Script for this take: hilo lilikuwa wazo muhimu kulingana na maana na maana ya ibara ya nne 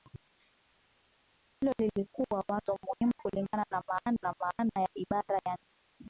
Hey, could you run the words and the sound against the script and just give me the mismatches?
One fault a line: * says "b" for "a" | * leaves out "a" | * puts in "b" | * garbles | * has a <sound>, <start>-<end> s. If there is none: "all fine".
all fine